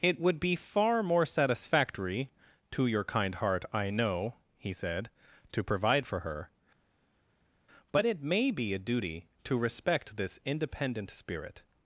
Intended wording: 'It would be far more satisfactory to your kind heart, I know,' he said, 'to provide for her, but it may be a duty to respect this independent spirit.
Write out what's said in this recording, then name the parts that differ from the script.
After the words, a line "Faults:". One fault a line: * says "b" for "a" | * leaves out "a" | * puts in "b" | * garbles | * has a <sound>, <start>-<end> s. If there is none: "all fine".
'It would be far more satisfactory to your kind heart, I know,' he said, 'to provide for her, but it may be a duty to respect this independent spirit.
Faults:
all fine